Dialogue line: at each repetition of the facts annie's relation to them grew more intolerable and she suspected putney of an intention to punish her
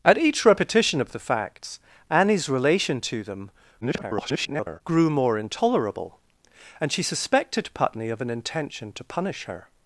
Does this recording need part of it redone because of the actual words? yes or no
yes